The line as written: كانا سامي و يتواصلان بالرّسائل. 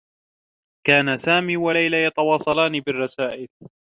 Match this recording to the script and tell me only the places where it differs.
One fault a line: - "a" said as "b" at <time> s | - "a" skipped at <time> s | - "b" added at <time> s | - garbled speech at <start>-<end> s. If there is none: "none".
- "ليلى" added at 1.7 s